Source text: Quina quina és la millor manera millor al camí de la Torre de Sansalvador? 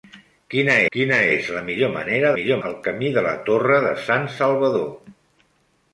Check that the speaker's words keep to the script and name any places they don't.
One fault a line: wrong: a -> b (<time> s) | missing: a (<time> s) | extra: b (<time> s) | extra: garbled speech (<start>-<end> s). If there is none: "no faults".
no faults